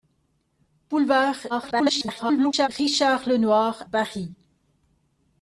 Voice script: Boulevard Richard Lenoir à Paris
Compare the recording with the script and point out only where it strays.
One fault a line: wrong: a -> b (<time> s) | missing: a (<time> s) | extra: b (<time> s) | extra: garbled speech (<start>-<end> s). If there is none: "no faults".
extra: garbled speech (1.5-2.7 s)
missing: à (3.8 s)